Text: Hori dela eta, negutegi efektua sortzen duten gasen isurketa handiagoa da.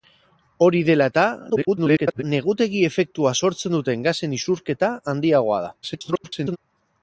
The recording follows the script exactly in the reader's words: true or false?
false